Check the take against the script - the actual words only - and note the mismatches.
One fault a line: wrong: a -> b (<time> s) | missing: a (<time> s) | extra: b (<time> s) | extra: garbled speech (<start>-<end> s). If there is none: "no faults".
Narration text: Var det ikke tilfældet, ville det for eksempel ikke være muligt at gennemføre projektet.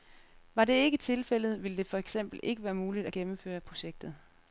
no faults